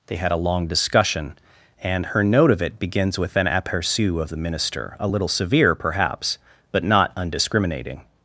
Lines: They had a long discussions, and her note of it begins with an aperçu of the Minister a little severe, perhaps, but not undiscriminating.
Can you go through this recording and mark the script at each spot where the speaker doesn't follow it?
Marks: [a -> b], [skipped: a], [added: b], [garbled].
They had a long [discussions, -> discussion] and her note of it begins with an aperçu of the Minister a little severe, perhaps, but not undiscriminating.